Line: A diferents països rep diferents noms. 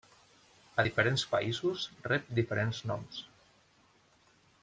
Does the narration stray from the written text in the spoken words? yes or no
no